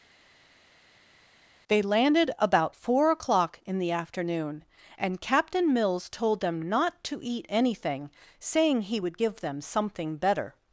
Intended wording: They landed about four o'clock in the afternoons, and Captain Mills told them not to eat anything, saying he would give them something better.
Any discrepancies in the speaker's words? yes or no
yes